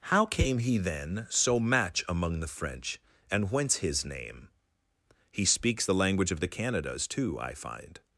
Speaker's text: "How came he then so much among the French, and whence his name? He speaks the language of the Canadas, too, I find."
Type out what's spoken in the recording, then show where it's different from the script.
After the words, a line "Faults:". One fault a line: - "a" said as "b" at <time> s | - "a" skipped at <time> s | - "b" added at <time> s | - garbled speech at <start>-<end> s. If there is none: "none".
"How came he then so match among the French, and whence his name? He speaks the language of the Canadas, too, I find."
Faults:
- "much" said as "match" at 1.6 s